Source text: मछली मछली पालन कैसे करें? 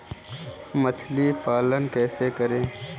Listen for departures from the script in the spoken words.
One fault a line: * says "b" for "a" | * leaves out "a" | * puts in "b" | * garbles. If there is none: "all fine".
* leaves out "मछली"